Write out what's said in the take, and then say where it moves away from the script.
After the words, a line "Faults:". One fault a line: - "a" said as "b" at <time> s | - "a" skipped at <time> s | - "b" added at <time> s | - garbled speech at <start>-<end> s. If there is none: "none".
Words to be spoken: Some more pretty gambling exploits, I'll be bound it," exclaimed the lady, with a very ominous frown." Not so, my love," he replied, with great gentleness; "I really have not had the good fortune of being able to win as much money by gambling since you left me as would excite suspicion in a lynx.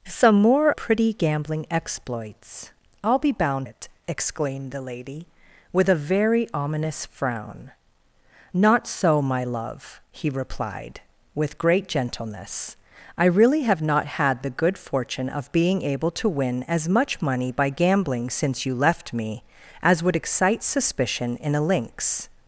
Some more pretty gambling exploits, I'll be bound it," exclaimed the lady, with a very ominous frown." Not so, my love," he replied, with great gentleness; "I really have not had the good fortune of being able to win as much money by gambling since you left me as would excite suspicion in a lynx.
Faults:
none